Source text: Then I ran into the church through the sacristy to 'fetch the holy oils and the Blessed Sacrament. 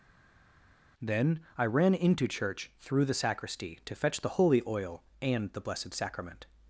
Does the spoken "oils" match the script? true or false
false